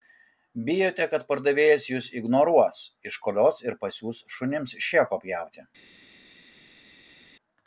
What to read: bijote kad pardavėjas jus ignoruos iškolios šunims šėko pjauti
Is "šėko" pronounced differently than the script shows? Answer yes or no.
no